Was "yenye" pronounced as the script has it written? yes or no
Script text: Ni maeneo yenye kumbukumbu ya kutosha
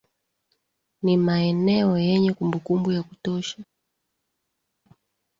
yes